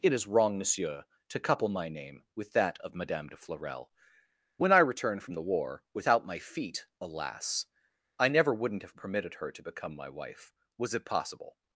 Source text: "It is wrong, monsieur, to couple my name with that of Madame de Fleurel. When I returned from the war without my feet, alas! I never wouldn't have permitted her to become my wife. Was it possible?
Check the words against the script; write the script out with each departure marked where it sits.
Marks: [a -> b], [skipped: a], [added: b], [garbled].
"It is wrong, monsieur, to couple my name with that of Madame de Fleurel. When I returned from the war without my feet, alas! I never wouldn't have permitted her to become my wife. Was it possible?